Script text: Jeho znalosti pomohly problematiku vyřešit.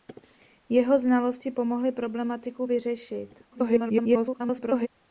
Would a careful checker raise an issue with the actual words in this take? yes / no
yes